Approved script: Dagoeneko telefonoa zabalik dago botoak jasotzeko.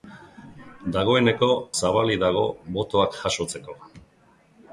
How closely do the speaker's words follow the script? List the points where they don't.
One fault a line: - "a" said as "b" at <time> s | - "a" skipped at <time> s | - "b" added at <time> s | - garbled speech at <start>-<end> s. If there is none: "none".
- "telefonoa" skipped at 1.5 s